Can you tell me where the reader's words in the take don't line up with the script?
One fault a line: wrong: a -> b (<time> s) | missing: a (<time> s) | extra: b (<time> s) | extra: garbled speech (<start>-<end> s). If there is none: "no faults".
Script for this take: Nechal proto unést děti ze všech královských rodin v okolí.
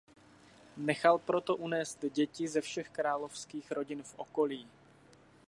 no faults